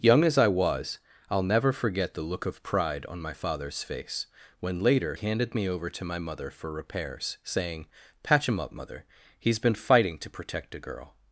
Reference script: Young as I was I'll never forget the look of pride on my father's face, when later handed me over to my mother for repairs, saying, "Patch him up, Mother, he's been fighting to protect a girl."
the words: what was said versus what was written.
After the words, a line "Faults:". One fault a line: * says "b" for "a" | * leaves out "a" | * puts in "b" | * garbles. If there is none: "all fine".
Young as I was I'll never forget the look of pride on my father's face, when later handed me over to my mother for repairs, saying, "Patch him up, Mother, he's been fighting to protect a girl."
Faults:
all fine